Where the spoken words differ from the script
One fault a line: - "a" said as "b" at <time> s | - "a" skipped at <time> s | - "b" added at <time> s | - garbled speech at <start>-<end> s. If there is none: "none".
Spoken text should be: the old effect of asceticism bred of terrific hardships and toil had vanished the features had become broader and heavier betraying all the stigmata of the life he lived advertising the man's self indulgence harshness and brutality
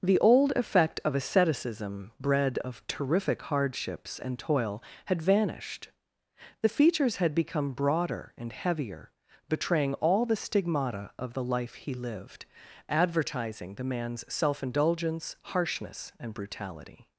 none